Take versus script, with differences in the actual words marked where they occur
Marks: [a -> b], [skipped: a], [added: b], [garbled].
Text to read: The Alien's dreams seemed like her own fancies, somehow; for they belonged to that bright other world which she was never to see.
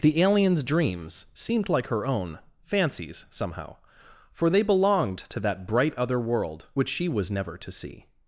The Alien's dreams seemed like her own fancies, somehow; for they belonged to that bright other world which she was never to see.